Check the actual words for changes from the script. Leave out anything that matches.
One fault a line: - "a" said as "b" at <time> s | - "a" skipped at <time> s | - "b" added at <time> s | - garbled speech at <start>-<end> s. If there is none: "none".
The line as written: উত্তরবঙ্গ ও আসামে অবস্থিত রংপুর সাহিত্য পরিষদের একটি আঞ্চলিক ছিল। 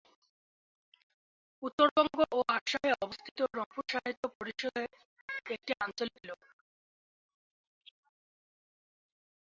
none